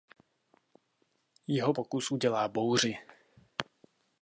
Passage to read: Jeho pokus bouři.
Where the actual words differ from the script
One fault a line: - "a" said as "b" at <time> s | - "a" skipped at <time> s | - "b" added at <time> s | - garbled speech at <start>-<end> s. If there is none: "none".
- "udělá" added at 2.1 s